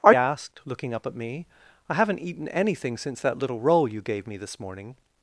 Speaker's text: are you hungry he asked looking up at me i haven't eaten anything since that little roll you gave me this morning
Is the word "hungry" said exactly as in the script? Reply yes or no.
no